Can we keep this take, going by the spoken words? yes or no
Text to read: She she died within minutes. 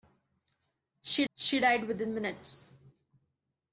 yes